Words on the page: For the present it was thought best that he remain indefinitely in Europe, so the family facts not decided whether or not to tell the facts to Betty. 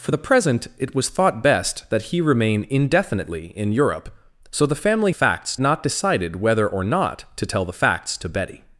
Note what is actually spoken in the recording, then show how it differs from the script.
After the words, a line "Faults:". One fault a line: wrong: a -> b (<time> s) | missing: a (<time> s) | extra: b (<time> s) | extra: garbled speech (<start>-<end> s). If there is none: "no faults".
For the present it was thought best that he remain indefinitely in Europe, so the family facts not decided whether or not to tell the facts to Betty.
Faults:
no faults